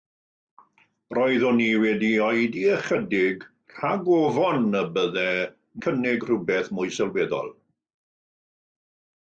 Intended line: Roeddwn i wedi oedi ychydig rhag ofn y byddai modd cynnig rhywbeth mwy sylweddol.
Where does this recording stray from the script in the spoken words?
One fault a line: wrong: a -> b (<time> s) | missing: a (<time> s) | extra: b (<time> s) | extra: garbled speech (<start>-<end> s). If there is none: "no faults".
missing: modd (5.3 s)